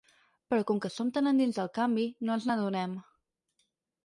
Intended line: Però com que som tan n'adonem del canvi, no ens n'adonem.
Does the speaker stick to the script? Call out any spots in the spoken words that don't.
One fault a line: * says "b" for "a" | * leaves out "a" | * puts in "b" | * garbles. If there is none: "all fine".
* says "endins" for "n'adonem"